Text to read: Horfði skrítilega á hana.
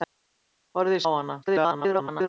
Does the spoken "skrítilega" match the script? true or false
false